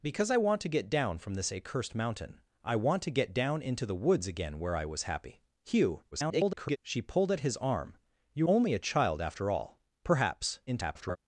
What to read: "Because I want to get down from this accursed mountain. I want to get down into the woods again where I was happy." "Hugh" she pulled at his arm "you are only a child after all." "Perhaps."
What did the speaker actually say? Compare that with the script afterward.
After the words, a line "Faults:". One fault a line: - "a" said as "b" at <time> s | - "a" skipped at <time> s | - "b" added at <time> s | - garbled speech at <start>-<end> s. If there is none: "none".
"Because I want to get down from this accursed mountain. I want to get down into the woods again where I was happy." "Hugh" [garbled] she pulled at his arm "you only a child after all." "Perhaps." [garbled]
Faults:
- garbled speech at 6.1-6.8 s
- "are" skipped at 8.5 s
- garbled speech at 10.7-11.2 s